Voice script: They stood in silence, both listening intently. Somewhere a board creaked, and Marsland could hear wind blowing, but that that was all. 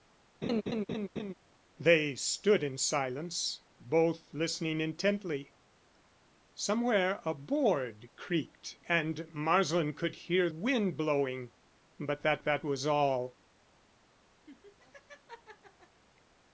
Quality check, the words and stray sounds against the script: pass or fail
fail